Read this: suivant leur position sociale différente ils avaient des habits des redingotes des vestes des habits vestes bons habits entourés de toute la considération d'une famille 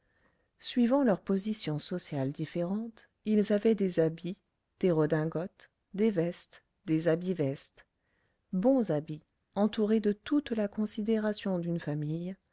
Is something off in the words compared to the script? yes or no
no